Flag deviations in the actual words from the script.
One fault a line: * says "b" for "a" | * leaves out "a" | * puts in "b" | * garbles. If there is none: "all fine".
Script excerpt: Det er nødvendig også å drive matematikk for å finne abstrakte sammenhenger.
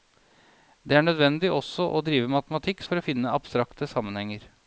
all fine